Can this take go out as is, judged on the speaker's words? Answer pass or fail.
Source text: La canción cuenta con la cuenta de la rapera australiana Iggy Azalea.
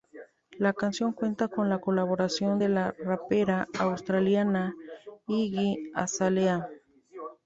fail